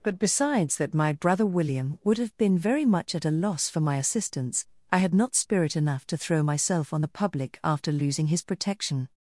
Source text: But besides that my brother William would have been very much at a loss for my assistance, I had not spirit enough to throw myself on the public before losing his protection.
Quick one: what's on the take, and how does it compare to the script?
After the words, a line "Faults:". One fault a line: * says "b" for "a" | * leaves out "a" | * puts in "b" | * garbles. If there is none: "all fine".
But besides that my brother William would have been very much at a loss for my assistance, I had not spirit enough to throw myself on the public after losing his protection.
Faults:
* says "after" for "before"